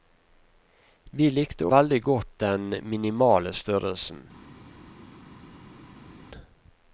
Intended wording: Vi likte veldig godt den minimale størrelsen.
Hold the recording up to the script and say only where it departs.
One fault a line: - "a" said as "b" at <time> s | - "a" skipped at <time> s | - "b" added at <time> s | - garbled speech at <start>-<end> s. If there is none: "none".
none